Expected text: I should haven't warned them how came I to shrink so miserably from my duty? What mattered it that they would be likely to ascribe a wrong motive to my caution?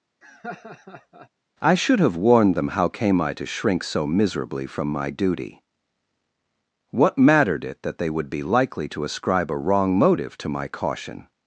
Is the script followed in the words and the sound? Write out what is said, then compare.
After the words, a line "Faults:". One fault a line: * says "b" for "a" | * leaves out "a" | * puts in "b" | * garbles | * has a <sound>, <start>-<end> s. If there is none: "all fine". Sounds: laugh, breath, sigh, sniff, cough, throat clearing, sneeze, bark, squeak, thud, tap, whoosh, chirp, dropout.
I should have warned them how came I to shrink so miserably from my duty? What mattered it that they would be likely to ascribe a wrong motive to my caution?
Faults:
* has a laugh, 0.2-1.3 s
* says "have" for "haven't"